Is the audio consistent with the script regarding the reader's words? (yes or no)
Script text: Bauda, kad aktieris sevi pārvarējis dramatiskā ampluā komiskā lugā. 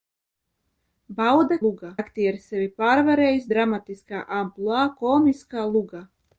no